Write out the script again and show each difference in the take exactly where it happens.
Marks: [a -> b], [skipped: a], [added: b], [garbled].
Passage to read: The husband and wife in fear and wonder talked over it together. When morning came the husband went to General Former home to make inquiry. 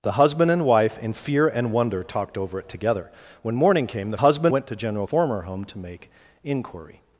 The husband and wife in fear and wonder talked over it together. When morning came the husband went to General Former home to make inquiry.